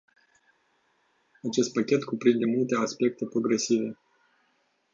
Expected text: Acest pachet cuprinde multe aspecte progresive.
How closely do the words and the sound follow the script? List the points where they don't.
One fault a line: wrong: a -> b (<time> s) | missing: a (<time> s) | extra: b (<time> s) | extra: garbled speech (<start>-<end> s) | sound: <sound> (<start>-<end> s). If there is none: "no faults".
no faults